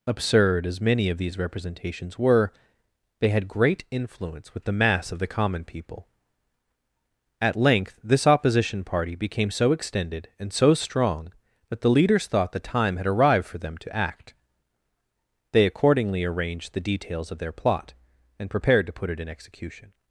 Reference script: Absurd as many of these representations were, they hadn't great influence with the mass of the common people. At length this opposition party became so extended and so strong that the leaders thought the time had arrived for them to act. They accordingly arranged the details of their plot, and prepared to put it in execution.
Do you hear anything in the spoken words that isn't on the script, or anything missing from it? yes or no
yes